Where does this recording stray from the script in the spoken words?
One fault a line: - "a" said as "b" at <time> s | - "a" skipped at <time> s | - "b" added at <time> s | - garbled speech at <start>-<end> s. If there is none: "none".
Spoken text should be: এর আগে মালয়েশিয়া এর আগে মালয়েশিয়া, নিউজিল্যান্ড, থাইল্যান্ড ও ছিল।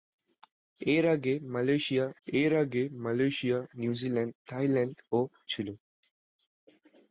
none